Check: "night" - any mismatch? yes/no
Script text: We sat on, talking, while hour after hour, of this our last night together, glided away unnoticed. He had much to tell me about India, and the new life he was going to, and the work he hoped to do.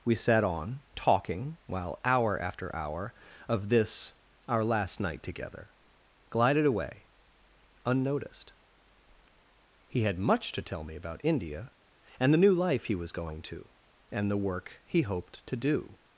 no